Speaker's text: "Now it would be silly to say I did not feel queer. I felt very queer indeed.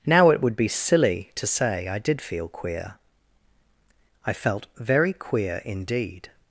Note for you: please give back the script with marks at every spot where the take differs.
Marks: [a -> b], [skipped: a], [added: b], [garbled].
"Now it would be silly to say I did [skipped: not] feel queer. I felt very queer indeed.